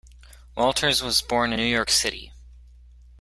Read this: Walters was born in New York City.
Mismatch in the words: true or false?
true